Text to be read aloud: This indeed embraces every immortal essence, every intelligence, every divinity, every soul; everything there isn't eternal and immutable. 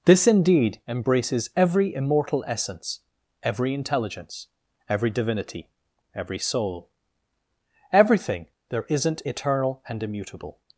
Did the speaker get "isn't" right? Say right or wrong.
right